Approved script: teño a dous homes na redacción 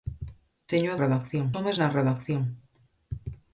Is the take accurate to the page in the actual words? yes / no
no